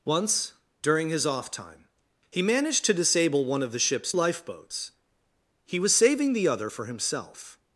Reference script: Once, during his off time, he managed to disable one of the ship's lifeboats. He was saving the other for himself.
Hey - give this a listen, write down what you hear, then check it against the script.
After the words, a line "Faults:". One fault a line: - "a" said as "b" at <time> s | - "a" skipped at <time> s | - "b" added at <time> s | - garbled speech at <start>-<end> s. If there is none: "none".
Once, during his off time, he managed to disable one of the ship's lifeboats. He was saving the other for himself.
Faults:
none